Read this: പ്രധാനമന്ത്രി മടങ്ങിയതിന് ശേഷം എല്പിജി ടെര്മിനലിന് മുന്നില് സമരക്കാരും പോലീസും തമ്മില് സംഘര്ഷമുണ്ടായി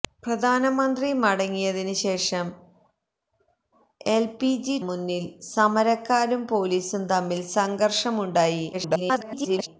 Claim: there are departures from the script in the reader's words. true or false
true